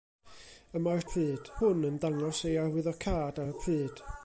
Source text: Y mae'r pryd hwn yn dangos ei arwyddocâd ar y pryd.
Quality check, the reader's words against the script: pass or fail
pass